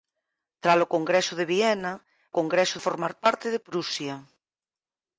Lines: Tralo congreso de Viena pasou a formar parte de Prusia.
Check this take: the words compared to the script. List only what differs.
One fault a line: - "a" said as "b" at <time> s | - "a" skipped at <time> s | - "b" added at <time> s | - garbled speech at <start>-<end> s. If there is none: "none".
- "pasou" said as "congreso" at 2.4 s